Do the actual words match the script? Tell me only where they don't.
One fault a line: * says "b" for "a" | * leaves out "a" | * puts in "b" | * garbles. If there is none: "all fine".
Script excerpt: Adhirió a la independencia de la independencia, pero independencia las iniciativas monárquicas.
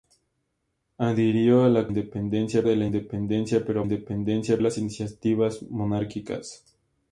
all fine